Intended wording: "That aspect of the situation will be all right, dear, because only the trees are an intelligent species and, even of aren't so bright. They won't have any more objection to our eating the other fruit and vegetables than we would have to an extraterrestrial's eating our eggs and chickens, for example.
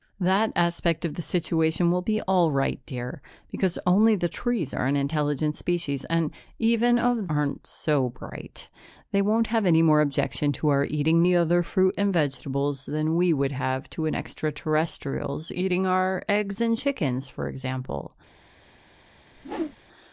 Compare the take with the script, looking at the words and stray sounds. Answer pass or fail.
fail